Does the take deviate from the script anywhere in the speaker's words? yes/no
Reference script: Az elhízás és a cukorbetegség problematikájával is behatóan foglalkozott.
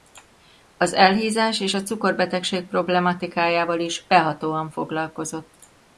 no